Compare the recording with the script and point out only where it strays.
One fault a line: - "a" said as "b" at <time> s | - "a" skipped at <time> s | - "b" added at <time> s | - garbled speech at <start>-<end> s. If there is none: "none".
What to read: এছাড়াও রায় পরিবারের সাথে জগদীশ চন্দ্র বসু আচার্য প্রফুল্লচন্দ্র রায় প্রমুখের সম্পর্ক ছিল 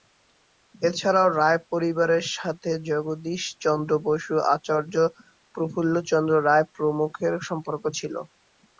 none